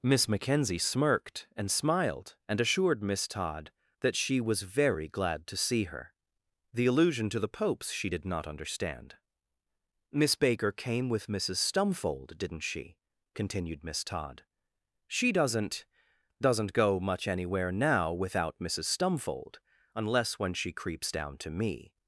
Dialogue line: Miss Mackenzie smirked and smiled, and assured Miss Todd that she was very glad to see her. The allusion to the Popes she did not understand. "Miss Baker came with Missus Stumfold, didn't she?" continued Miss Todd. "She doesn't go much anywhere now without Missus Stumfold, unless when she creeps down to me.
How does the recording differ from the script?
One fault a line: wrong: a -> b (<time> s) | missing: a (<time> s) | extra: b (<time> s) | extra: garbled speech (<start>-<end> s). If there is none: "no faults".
extra: doesn't (16.4 s)